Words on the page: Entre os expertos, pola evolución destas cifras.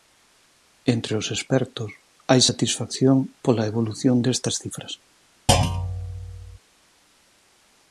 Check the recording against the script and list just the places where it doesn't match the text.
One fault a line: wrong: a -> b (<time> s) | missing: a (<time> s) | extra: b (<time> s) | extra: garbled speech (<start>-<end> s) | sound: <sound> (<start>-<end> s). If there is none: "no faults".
extra: hai satisfacción (2.3 s)
sound: thud (5.5-6.6 s)